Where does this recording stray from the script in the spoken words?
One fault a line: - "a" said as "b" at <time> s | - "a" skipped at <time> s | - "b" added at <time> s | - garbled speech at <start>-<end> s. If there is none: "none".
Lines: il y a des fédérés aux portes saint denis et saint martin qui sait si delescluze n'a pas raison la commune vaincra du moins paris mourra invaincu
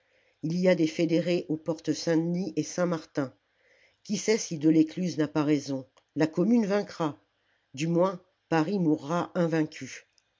none